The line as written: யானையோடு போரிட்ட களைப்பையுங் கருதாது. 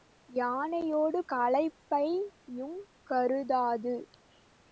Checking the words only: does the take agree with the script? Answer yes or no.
no